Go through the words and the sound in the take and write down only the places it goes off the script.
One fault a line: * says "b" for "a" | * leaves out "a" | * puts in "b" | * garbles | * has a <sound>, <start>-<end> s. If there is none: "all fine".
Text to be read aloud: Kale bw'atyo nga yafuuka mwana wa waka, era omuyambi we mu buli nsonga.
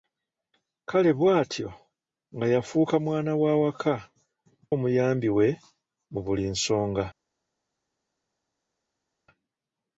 * leaves out "era"